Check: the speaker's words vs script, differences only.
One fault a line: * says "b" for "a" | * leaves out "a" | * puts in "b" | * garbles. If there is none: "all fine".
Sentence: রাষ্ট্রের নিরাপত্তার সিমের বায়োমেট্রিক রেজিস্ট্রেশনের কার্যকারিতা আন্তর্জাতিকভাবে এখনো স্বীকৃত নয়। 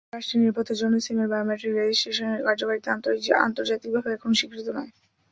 * puts in "জন্য"